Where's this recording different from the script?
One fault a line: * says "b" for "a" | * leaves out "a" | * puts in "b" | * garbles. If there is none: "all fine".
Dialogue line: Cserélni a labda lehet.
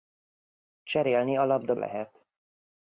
all fine